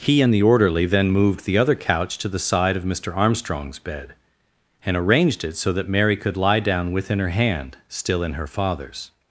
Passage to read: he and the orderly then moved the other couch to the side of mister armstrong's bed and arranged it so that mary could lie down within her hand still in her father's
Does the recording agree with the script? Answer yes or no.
yes